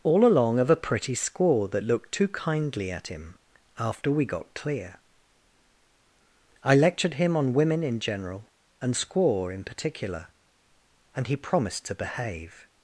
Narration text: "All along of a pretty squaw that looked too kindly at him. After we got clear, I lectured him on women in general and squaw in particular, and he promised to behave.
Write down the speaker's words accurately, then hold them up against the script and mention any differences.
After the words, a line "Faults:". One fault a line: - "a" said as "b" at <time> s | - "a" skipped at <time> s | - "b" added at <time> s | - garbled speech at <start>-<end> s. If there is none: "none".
"All along of a pretty squaw that looked too kindly at him. After we got clear, I lectured him on women in general and squaw in particular, and he promised to behave.
Faults:
none